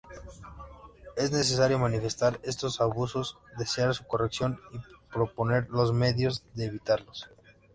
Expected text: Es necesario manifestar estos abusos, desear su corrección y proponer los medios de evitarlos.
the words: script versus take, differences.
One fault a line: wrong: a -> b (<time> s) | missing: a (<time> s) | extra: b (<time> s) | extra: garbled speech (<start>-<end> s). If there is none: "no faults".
no faults